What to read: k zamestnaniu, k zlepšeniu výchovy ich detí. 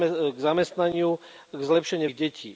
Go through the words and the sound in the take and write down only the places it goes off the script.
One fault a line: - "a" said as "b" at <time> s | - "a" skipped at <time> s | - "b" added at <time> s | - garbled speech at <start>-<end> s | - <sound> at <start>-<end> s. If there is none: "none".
- "výchovy" skipped at 2.1 s